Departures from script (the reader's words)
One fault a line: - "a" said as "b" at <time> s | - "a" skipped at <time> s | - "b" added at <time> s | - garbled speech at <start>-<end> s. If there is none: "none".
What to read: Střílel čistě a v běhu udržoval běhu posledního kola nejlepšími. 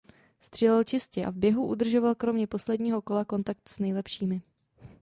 - "běhu" said as "kromě" at 2.1 s
- "kontakt s" added at 3.2 s